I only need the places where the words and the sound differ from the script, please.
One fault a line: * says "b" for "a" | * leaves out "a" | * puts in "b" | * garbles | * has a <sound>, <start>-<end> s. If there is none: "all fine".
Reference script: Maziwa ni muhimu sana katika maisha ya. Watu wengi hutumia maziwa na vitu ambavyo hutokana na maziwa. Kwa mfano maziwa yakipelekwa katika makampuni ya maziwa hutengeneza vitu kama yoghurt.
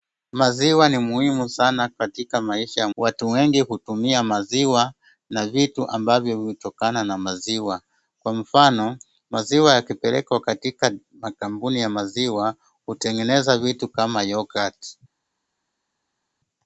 all fine